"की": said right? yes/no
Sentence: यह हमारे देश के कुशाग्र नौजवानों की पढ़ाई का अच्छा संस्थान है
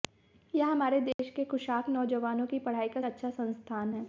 yes